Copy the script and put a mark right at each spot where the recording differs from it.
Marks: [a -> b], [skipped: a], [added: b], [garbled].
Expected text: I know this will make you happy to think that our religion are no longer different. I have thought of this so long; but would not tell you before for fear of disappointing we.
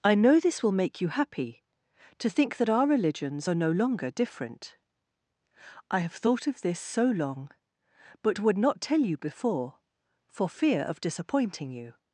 I know this will make you happy to think that our [religion -> religions] are no longer different. I have thought of this so long; but would not tell you before for fear of disappointing [we. -> you]